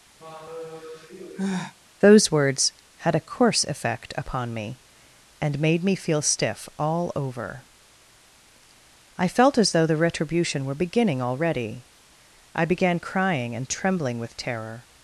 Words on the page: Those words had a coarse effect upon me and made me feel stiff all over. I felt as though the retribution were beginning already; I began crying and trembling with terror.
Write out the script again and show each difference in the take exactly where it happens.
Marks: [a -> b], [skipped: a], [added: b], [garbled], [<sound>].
[sigh] Those words had a coarse effect upon me and made me feel stiff all over. I felt as though the retribution were beginning already; I began crying and trembling with terror.